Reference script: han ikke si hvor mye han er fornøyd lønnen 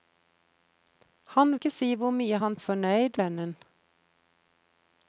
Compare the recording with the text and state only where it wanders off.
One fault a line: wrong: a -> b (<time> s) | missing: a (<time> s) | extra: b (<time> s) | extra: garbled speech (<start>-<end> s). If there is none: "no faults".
no faults